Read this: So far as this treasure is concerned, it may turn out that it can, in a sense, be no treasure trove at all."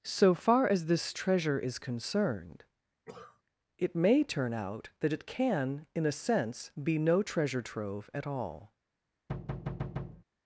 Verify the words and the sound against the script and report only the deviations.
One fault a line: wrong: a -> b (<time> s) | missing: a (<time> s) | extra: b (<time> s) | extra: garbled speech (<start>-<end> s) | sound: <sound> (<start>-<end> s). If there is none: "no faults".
sound: cough (3.1-3.4 s)
sound: thud (9.3-10.2 s)